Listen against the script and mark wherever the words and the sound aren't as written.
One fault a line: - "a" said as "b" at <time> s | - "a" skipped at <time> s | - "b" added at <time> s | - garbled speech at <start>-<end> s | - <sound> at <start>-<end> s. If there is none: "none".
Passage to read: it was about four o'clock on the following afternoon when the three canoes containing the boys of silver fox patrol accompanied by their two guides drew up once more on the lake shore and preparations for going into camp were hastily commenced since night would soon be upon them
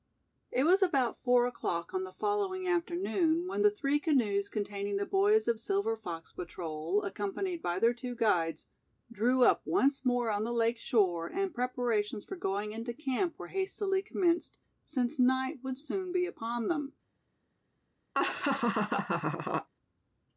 - laugh at 18.1-19.7 s